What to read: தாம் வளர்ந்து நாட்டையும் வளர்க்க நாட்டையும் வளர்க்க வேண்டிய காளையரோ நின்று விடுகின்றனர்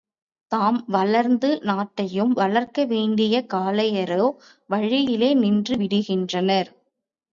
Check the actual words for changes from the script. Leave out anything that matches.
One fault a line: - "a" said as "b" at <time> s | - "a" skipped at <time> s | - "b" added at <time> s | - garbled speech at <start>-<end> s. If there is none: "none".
- "நாட்டையும் வளர்க்க" skipped at 2.9 s
- "வழியிலே" added at 4.7 s